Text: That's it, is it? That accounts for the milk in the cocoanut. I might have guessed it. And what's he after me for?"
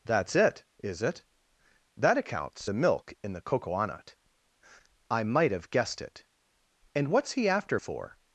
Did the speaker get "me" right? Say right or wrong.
wrong